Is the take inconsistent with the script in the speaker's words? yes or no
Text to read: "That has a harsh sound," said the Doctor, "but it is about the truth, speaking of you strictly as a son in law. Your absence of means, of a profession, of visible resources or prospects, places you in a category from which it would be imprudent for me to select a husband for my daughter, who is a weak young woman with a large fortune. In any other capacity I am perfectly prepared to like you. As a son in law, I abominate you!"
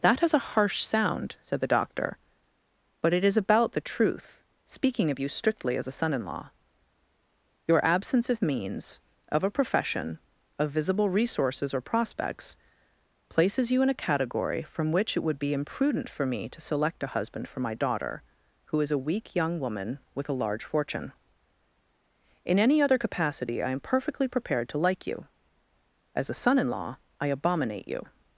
no